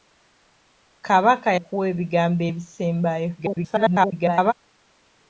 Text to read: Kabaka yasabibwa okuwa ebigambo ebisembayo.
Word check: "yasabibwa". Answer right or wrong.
wrong